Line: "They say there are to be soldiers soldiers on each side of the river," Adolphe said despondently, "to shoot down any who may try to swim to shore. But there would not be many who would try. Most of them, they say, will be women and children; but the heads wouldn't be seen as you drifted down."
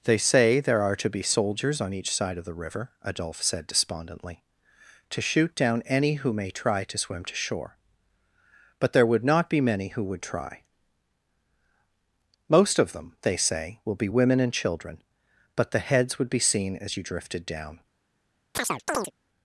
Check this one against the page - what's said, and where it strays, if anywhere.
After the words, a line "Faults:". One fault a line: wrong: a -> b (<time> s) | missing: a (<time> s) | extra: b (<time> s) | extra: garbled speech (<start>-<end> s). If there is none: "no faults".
"They say there are to be soldiers on each side of the river," Adolphe said despondently, "to shoot down any who may try to swim to shore. But there would not be many who would try. Most of them, they say, will be women and children; but the heads would be seen as you drifted down."
Faults:
missing: soldiers (1.8 s)
wrong: wouldn't -> would (16.2 s)